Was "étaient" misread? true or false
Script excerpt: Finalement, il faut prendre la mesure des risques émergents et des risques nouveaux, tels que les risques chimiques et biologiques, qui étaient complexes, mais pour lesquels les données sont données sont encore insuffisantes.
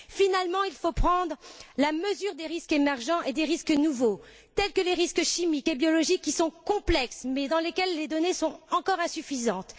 true